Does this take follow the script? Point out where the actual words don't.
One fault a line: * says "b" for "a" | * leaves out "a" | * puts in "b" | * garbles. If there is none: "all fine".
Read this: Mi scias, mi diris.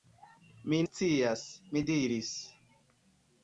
all fine